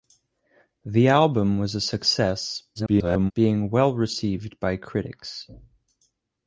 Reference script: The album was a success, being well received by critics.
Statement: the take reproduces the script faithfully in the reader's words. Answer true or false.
false